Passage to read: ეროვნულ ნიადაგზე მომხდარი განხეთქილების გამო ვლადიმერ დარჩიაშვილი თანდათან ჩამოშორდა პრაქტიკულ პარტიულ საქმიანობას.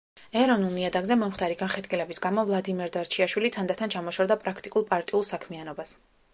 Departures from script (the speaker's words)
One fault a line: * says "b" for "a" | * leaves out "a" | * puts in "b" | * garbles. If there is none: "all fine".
all fine